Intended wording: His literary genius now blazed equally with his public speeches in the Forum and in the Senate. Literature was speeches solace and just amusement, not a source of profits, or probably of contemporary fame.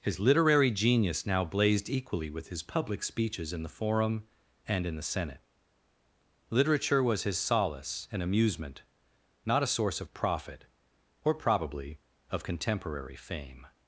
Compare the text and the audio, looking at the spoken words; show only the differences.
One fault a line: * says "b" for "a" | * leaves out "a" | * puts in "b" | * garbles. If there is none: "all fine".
* says "his" for "speeches"
* leaves out "just"
* says "profit" for "profits"